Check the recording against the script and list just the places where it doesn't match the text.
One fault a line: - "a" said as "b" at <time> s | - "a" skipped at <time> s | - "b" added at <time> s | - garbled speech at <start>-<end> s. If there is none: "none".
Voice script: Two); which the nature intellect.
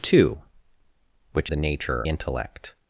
none